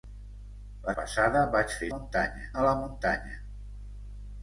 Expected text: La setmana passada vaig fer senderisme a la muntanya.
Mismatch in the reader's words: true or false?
true